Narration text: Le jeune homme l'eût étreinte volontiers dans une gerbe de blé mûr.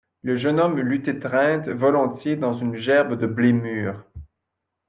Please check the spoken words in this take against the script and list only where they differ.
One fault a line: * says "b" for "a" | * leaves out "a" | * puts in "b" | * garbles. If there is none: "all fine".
all fine